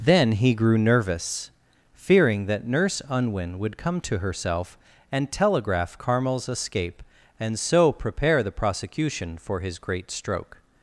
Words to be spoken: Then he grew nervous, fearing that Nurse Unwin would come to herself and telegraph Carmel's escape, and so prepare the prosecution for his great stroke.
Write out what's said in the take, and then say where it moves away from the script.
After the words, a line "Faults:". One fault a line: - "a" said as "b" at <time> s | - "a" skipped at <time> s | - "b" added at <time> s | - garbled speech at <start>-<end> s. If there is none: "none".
Then he grew nervous, fearing that Nurse Unwin would come to herself and telegraph Carmel's escape, and so prepare the prosecution for his great stroke.
Faults:
none